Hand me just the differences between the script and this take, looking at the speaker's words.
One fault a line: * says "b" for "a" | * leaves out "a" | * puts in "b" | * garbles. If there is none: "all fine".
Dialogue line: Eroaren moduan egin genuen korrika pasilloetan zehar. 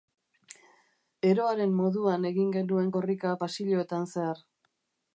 all fine